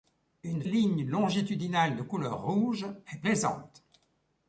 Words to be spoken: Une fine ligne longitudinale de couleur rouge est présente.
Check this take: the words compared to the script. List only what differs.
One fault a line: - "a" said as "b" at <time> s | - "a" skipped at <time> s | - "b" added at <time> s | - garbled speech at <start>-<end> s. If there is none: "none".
- "fine" skipped at 0.6 s